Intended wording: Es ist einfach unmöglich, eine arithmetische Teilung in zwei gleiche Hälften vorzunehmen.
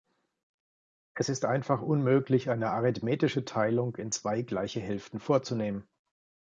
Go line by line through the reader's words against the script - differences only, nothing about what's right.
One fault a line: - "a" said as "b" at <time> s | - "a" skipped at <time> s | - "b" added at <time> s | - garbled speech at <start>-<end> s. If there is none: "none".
none